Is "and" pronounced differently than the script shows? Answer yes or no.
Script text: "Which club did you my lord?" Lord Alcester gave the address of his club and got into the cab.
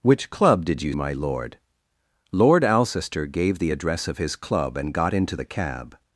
no